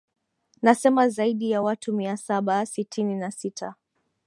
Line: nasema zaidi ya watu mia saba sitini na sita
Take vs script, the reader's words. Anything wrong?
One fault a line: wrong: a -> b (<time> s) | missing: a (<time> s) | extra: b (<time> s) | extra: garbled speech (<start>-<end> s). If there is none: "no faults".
no faults